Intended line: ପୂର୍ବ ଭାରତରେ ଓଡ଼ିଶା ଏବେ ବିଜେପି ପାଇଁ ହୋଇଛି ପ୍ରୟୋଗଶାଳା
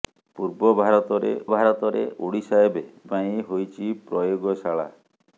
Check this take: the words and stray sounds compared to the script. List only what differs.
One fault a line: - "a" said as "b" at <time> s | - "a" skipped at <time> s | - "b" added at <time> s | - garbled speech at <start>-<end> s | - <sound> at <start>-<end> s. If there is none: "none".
- "ଭାରତରେ" added at 1.5 s
- "ବିଜେପି" skipped at 2.8 s